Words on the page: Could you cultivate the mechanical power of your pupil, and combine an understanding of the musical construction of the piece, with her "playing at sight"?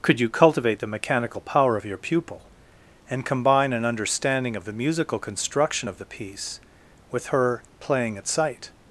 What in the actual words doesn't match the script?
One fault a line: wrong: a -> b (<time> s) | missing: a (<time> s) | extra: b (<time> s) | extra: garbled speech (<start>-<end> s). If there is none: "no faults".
no faults